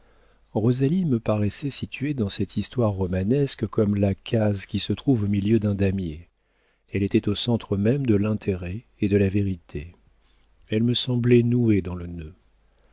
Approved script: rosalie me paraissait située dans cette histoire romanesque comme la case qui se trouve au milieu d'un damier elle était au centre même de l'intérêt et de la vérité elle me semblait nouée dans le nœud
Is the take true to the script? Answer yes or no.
yes